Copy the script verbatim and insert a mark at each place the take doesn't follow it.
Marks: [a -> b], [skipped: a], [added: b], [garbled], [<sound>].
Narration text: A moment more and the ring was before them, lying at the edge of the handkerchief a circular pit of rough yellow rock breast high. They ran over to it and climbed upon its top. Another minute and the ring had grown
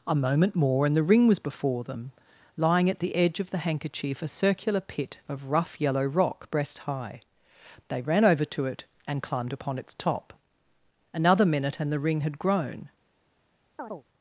A moment more and the ring was before them, lying at the edge of the handkerchief a circular pit of rough yellow rock breast high. They ran over to it and climbed upon its top. Another minute and the ring had grown [chirp]